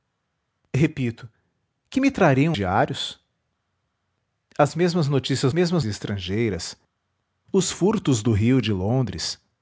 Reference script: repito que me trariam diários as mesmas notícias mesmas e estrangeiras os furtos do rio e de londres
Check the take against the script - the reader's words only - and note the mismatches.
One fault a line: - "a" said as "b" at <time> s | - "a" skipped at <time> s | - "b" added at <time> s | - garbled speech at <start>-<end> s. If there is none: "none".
none